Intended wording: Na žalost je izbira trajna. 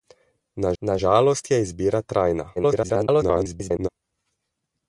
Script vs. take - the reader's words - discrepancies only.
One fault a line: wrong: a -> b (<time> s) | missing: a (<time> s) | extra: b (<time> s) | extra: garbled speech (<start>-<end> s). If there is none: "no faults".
extra: na (0.8 s)
extra: garbled speech (2.6-3.9 s)